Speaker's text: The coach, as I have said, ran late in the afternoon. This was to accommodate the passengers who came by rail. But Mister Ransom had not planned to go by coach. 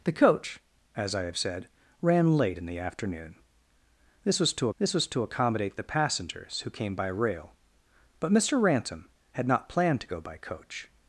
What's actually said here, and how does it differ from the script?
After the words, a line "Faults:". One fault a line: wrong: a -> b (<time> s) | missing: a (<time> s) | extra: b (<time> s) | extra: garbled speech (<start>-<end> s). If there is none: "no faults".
The coach, as I have said, ran late in the afternoon. This was to this was to accommodate the passengers who came by rail. But Mister Ransom had not planned to go by coach.
Faults:
extra: this was to (4.8 s)